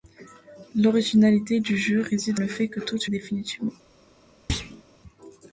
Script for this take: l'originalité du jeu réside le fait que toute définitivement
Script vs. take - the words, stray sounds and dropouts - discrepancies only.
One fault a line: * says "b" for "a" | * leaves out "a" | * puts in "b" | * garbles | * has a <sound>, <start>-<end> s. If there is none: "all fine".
* has a thud, 4.5-4.8 s